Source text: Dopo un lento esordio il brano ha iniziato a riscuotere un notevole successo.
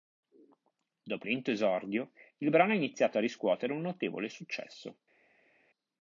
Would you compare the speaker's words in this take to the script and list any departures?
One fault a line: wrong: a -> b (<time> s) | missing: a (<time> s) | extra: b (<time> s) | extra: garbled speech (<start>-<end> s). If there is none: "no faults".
missing: un (1.3 s)